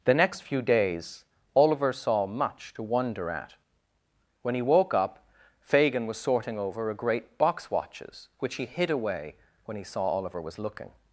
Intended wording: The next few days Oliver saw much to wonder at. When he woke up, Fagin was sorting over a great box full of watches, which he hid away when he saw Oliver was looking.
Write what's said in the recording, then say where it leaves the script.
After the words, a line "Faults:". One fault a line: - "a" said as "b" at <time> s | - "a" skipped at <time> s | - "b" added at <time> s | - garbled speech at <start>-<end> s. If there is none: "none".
The next few days Oliver saw much to wonder at. When he woke up, Fagin was sorting over a great box watches, which he hid away when he saw Oliver was looking.
Faults:
- "full of" skipped at 7.7 s